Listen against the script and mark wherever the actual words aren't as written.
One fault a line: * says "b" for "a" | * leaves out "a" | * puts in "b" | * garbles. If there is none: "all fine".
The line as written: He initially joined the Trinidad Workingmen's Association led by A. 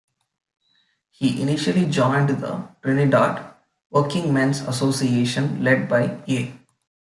all fine